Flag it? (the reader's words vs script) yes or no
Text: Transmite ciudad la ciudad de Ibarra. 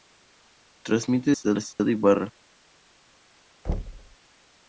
no